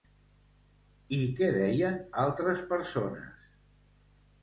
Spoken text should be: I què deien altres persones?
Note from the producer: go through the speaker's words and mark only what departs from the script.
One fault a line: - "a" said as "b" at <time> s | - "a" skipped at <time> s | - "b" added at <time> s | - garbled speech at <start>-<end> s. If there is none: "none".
none